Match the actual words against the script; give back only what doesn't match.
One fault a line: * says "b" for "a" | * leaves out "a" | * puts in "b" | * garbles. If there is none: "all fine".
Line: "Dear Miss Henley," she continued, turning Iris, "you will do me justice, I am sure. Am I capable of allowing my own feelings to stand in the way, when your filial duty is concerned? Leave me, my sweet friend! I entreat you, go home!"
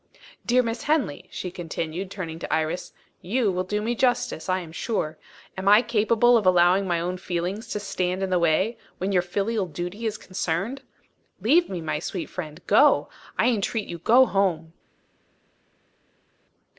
* puts in "to"
* puts in "Go"